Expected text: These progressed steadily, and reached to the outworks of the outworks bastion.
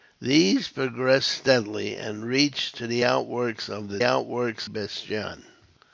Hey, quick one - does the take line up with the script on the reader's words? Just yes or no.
yes